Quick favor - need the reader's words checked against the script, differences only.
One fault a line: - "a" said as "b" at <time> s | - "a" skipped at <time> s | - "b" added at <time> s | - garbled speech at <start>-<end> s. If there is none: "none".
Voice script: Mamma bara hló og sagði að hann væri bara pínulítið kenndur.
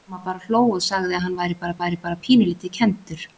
- "væri bara" added at 1.8 s